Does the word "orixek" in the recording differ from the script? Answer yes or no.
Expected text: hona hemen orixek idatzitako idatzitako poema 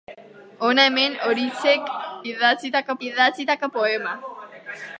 no